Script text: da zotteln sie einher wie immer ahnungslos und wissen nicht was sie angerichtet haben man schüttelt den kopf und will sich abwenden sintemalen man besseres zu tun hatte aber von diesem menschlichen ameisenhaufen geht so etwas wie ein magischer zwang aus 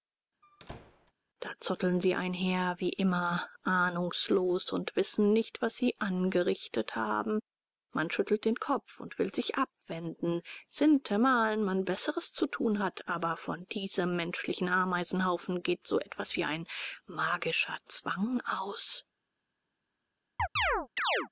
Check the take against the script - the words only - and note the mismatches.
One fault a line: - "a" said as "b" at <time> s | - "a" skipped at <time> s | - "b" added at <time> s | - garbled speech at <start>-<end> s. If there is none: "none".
- "hatte" said as "hat" at 12.8 s